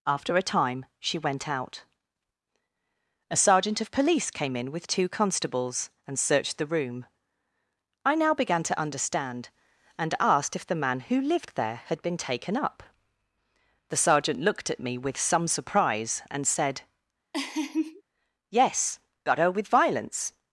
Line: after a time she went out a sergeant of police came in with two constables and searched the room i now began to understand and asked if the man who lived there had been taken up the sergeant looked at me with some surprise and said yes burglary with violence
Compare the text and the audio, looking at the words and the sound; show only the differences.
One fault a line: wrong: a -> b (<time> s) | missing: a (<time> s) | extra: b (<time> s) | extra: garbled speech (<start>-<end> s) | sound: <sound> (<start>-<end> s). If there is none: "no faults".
sound: laugh (17.3-18.0 s)
wrong: burglary -> got her (19.2 s)